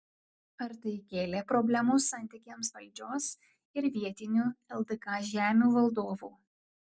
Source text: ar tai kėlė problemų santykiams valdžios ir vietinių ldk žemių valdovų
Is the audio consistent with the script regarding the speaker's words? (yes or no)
yes